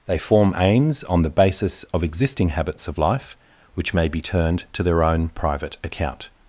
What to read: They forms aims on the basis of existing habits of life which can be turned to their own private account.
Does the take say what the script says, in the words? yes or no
no